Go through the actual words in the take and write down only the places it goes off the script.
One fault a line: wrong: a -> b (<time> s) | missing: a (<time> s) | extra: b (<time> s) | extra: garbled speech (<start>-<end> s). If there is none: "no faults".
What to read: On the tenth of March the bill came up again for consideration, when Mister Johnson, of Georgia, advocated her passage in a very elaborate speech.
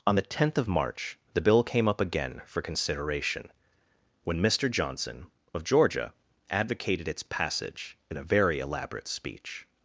wrong: her -> its (7.1 s)